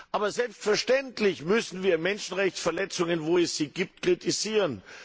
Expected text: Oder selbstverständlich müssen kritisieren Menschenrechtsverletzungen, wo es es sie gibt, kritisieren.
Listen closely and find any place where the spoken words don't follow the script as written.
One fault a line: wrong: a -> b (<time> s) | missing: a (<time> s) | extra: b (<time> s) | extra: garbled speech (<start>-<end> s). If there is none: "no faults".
wrong: Oder -> Aber (0.1 s)
wrong: kritisieren -> wir (1.8 s)
missing: es (3.6 s)